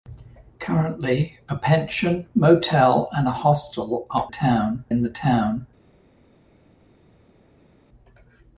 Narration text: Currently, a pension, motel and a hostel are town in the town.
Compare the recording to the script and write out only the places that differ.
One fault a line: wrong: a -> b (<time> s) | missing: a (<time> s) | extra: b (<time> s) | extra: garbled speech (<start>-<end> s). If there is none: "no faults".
no faults